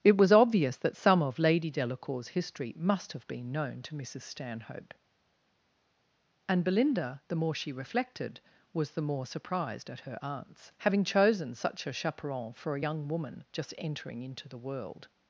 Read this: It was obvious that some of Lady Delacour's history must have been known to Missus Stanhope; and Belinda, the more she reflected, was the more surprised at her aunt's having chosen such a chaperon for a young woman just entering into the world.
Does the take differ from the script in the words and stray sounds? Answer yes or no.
no